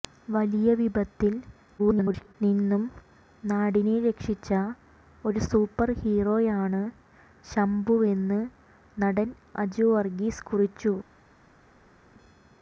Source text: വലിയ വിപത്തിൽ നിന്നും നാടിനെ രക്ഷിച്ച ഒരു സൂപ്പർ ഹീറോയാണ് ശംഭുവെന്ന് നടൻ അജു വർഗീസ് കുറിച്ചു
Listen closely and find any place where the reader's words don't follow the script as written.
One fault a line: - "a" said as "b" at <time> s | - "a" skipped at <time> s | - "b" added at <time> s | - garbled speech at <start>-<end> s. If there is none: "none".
- garbled speech at 1.8-2.4 s